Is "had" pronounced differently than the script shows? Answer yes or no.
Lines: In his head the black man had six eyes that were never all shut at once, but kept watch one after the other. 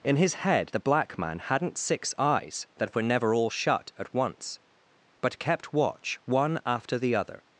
yes